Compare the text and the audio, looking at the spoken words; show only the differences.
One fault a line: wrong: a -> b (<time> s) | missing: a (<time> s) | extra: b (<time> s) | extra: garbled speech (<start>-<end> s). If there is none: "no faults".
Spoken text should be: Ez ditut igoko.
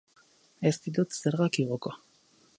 extra: zergak (1.2 s)